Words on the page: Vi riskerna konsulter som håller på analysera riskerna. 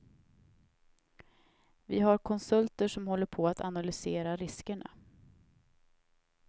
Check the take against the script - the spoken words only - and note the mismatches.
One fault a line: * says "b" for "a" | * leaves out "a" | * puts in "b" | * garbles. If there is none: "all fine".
* says "har" for "riskerna"
* puts in "att"